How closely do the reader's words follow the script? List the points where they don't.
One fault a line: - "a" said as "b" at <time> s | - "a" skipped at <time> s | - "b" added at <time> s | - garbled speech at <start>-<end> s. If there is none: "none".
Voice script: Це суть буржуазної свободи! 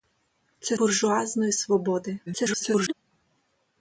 - "суть" skipped at 0.8 s
- garbled speech at 2.3-2.9 s